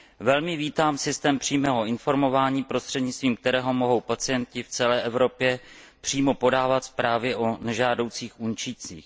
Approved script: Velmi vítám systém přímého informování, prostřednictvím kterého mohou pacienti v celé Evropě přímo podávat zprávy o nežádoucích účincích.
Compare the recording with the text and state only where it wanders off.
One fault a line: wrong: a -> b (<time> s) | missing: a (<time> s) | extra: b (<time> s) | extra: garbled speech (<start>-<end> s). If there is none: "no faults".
no faults